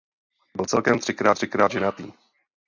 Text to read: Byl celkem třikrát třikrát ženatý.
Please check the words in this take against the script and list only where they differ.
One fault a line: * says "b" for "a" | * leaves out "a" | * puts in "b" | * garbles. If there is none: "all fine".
all fine